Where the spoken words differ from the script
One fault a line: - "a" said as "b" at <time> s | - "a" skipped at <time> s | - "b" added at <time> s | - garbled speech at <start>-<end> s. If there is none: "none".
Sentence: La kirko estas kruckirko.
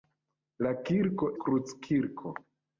- "estas" skipped at 1.3 s